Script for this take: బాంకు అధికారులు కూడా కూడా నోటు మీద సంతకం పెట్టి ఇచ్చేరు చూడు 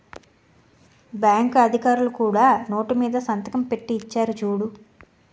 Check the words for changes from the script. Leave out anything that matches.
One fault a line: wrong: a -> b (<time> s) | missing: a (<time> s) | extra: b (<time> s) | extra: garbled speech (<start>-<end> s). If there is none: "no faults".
missing: కూడా (2.5 s)